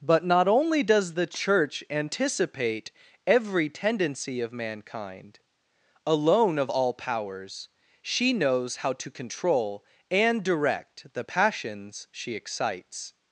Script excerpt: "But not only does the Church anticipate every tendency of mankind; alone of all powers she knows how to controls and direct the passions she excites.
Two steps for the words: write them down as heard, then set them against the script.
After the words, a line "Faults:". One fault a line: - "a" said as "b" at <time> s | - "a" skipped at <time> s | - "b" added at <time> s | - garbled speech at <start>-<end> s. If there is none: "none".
"But not only does the Church anticipate every tendency of mankind; alone of all powers she knows how to control and direct the passions she excites.
Faults:
- "controls" said as "control" at 9.1 s